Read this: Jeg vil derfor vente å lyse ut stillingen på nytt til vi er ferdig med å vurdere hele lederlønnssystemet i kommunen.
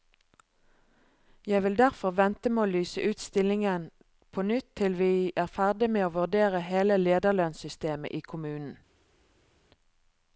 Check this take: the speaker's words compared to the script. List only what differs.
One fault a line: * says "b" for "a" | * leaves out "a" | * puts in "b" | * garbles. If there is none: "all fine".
* puts in "med"